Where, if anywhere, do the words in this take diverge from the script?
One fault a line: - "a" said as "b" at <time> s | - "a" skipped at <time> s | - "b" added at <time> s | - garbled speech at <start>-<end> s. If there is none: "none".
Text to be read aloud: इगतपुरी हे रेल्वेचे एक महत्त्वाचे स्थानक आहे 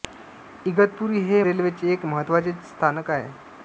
none